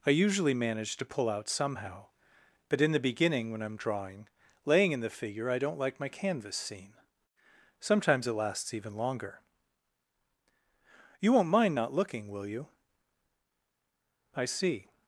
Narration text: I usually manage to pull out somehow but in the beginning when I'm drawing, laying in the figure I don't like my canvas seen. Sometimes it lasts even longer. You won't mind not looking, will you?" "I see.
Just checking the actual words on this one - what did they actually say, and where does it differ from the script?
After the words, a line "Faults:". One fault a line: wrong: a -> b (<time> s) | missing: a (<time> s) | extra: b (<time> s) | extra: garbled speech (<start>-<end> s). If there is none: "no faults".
I usually manage to pull out somehow but in the beginning when I'm drawing, laying in the figure I don't like my canvas seen. Sometimes it lasts even longer. You won't mind not looking, will you?" "I see.
Faults:
no faults